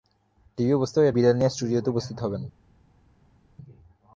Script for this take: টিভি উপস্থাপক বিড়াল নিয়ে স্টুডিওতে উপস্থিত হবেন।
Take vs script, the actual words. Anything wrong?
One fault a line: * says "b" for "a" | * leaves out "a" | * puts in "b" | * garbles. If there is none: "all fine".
all fine